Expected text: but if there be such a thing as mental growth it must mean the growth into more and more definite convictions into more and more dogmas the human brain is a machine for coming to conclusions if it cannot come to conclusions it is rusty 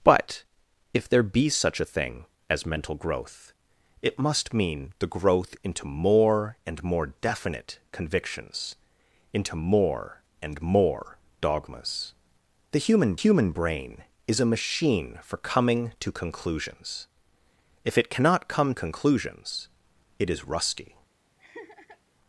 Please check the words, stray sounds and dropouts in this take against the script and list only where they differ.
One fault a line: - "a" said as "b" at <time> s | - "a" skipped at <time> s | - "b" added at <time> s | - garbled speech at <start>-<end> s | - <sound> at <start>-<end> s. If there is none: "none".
- "human" added at 13.1 s
- "to" skipped at 18.7 s
- laugh at 21.4-22.0 s